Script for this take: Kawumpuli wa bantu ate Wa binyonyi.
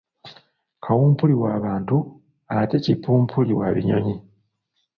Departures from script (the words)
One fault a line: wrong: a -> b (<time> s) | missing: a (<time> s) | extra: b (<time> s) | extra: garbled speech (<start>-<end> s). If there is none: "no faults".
extra: Kipumpuli (2.8 s)